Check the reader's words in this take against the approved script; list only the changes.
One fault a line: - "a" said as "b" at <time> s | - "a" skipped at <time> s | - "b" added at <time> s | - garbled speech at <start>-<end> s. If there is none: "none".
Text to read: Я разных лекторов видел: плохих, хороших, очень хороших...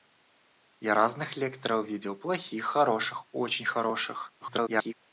- garbled speech at 4.4-4.9 s